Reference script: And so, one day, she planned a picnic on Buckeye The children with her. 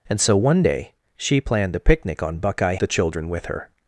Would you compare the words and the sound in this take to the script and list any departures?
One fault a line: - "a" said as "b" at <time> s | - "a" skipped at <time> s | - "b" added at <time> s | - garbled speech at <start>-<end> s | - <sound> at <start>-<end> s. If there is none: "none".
none